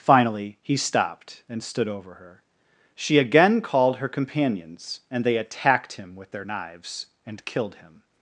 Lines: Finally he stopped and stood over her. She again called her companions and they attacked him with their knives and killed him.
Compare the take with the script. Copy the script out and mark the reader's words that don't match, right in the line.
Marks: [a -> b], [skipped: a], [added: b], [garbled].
Finally he stopped and stood over her. She again called her companions and they attacked him with their knives and killed him.